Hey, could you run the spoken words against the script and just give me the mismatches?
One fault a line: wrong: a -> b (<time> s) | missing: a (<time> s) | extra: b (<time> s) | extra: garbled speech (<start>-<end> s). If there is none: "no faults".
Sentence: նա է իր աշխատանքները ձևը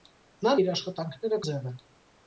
no faults